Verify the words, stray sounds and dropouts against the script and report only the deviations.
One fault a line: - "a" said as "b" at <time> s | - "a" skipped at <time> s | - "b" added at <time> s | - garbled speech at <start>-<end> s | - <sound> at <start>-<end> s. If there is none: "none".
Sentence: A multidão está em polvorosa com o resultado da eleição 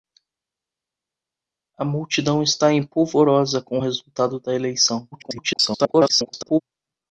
- garbled speech at 5.1-6.6 s